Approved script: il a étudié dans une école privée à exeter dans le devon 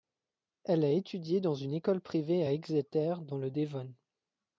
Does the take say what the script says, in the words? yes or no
no